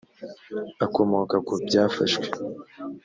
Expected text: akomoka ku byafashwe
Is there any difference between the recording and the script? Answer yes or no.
no